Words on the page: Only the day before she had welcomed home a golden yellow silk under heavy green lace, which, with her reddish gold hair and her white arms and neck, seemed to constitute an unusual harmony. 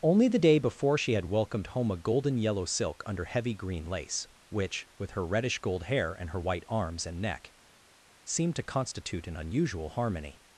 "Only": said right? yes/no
yes